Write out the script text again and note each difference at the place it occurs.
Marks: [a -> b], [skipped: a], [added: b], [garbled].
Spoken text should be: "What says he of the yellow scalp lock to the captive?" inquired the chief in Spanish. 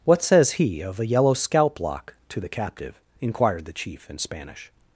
"What says he of [the -> a] yellow scalp lock to the captive?" inquired the chief in Spanish.